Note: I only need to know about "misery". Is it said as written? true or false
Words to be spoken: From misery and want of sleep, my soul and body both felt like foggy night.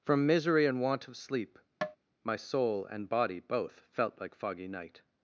true